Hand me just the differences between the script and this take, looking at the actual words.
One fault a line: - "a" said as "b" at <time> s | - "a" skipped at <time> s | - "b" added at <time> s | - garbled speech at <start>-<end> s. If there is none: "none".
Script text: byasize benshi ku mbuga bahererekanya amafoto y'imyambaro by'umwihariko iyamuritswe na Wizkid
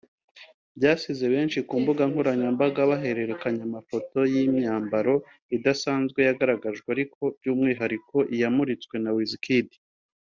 - "nkoranyambaga" added at 2.1 s
- "idasanzwe yagaragajwe ariko" added at 5.5 s